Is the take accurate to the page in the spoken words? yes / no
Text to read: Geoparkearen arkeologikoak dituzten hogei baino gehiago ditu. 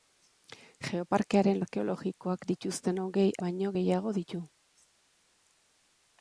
yes